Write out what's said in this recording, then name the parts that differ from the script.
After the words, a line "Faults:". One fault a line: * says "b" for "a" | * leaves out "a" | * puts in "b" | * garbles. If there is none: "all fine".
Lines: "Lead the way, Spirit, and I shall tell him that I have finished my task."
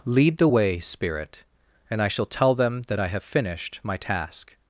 "Lead the way, Spirit, and I shall tell them that I have finished my task."
Faults:
* says "them" for "him"